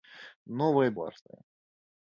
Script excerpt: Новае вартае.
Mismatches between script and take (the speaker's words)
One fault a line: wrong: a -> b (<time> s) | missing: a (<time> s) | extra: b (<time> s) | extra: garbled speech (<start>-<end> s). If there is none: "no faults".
no faults